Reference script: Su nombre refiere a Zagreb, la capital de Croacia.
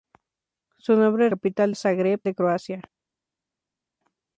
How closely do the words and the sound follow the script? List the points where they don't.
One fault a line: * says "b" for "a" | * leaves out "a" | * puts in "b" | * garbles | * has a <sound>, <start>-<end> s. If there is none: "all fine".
* says "capital" for "refiere"
* leaves out "la capital"